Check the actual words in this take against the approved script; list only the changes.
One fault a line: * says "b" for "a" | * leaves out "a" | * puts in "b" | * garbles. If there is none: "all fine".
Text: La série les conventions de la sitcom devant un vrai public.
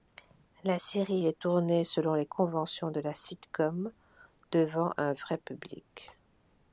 * puts in "est tournée selon"